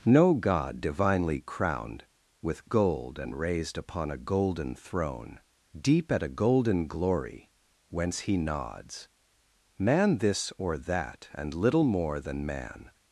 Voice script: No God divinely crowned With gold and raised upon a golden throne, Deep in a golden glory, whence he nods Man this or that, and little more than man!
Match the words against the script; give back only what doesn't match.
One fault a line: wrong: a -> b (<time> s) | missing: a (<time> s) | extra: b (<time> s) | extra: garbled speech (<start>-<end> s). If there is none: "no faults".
wrong: in -> at (6.1 s)